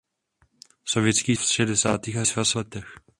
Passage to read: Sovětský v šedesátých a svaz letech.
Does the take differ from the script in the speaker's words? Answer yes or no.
no